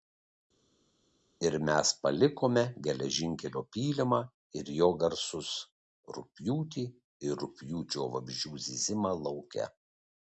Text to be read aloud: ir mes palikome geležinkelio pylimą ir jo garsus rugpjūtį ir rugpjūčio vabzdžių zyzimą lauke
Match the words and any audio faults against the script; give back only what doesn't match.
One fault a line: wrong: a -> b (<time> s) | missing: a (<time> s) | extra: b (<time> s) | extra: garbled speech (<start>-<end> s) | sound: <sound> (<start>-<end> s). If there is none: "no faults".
no faults